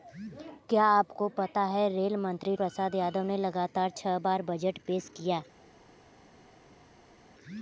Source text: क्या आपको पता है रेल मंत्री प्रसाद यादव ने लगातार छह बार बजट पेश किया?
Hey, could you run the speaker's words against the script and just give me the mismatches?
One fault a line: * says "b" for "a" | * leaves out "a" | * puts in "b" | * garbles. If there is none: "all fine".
all fine